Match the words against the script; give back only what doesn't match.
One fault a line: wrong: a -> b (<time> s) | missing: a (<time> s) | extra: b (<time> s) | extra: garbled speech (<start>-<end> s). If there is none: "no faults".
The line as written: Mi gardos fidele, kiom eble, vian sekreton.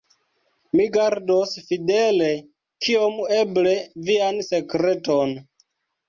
no faults